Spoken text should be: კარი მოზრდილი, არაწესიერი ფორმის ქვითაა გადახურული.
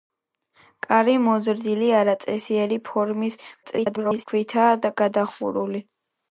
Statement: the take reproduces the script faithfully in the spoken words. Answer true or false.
false